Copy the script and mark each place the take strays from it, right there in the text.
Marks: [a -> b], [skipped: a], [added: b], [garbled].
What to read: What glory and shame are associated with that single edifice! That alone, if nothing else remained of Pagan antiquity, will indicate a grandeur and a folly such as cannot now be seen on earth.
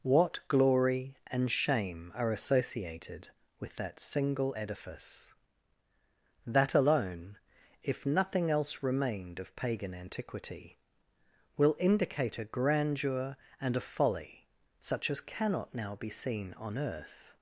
What glory and shame are associated with that single edifice! That alone, if nothing else remained of Pagan antiquity, will indicate a grandeur and a folly such as cannot now be seen on earth.